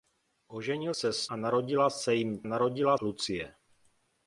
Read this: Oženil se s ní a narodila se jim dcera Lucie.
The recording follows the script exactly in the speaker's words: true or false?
false